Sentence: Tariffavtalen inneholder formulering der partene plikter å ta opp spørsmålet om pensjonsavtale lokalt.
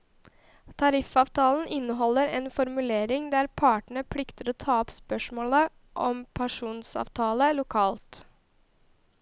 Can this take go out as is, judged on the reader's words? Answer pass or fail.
fail